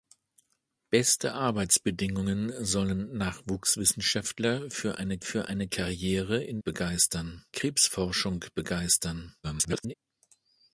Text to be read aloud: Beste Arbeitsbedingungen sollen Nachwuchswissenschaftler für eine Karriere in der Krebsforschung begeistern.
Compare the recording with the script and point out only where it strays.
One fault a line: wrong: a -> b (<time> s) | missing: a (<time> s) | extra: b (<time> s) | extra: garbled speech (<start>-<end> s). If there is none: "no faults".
extra: für eine (5.2 s)
wrong: der -> begeistern (6.6 s)
extra: garbled speech (9.4-9.9 s)